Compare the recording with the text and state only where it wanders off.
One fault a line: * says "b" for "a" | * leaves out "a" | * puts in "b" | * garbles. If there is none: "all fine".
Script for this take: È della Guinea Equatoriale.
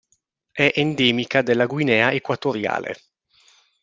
* puts in "endemica"